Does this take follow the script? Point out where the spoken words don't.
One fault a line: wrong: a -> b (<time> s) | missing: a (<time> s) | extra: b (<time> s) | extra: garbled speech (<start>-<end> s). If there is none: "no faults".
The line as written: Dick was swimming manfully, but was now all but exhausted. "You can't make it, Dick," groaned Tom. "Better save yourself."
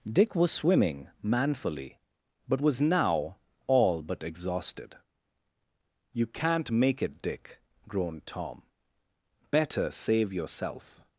no faults